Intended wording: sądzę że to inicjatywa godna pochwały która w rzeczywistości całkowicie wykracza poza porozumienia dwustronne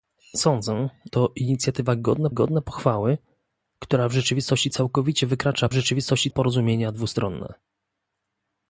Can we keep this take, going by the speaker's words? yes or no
no